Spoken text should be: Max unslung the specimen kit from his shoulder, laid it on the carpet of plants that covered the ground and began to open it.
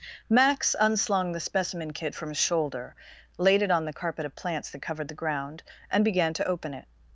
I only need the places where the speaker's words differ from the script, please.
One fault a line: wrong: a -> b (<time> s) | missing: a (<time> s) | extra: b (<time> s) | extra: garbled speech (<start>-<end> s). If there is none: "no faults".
no faults